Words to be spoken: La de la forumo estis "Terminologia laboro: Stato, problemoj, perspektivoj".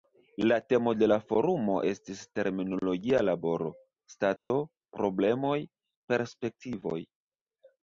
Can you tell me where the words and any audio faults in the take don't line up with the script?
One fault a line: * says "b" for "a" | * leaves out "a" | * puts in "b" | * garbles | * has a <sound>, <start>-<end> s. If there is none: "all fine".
* puts in "temo"
* has a dropout, 4.4-4.5 s